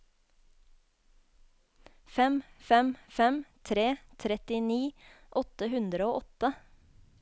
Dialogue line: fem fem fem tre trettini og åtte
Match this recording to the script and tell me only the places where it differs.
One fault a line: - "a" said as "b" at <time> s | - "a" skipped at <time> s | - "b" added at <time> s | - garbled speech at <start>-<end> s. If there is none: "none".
- "åtte hundre" added at 5.4 s